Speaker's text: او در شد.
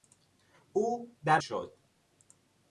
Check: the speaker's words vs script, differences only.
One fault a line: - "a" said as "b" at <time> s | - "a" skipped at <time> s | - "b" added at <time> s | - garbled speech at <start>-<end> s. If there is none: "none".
none